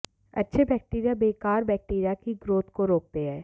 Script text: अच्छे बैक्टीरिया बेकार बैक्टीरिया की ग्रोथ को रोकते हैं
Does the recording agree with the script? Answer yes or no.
yes